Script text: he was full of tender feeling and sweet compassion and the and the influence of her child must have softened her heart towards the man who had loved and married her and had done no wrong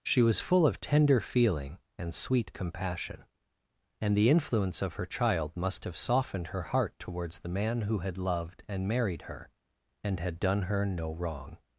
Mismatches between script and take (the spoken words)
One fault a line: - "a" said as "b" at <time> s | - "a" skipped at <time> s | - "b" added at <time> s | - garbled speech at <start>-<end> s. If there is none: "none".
- "he" said as "she" at 0.0 s
- "and the" skipped at 4.3 s
- "her" added at 10.6 s